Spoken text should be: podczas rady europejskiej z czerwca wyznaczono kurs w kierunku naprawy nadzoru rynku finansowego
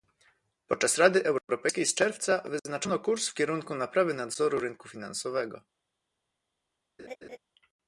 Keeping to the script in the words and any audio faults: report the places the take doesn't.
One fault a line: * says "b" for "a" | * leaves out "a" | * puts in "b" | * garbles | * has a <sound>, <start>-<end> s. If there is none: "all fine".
* has a laugh, 7.0-7.4 s